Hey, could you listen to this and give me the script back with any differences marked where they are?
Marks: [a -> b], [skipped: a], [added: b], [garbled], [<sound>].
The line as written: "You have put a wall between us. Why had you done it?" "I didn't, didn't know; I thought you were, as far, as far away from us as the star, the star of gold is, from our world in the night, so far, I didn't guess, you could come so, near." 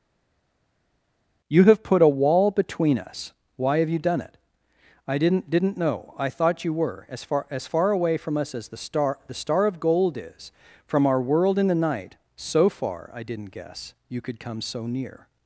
"You have put a wall between us. Why [had -> have] you done it?" "I didn't, didn't know; I thought you were, as far, as far away from us as the star, the star of gold is, from our world in the night, so far, I didn't guess, you could come so, near."